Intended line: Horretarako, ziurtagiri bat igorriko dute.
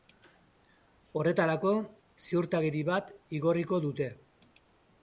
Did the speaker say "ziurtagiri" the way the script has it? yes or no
yes